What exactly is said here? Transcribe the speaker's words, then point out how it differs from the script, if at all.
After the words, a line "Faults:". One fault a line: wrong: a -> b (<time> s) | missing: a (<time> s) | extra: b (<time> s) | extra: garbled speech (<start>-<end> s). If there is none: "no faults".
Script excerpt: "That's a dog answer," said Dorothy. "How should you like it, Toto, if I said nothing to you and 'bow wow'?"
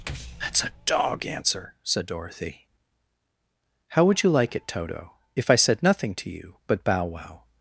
"That's a dog answer," said Dorothy. "How would you like it, Toto, if I said nothing to you but 'bow wow'?"
Faults:
wrong: should -> would (4.1 s)
wrong: and -> but (6.7 s)